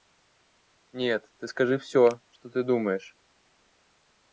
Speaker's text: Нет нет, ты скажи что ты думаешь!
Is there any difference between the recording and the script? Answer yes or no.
yes